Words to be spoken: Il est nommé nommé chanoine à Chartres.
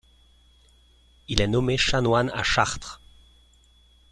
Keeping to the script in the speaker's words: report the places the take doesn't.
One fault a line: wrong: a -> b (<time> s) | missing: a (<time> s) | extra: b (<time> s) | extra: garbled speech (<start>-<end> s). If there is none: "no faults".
missing: nommé (1.8 s)